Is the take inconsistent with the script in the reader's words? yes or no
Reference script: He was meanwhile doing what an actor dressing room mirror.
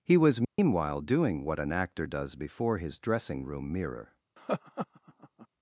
yes